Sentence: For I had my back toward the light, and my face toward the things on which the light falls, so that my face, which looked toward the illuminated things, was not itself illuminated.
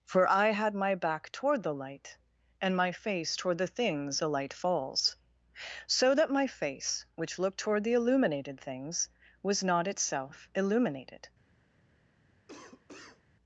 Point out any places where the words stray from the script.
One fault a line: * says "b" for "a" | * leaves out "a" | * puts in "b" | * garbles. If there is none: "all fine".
* leaves out "on which"